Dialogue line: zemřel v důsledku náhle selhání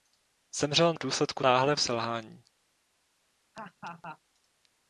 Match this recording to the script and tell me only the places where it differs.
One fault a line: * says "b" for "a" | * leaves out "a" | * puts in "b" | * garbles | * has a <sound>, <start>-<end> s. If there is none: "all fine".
* has a laugh, 3.5-4.2 s